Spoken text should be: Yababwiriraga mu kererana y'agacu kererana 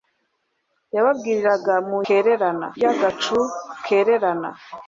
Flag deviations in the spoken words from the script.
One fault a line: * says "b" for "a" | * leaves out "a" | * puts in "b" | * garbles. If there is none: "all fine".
all fine